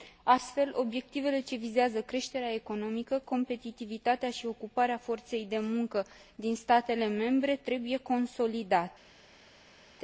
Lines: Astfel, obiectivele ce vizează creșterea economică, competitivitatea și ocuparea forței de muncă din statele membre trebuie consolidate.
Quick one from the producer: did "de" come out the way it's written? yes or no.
yes